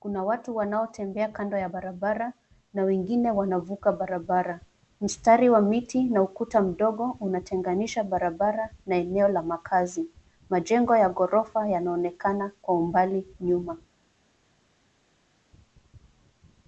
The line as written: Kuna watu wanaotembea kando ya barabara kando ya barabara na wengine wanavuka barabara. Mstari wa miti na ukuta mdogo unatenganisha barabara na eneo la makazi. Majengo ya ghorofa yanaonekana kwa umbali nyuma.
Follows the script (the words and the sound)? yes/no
no